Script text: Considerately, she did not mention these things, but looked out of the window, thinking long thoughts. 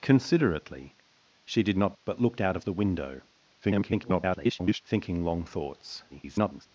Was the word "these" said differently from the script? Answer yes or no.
yes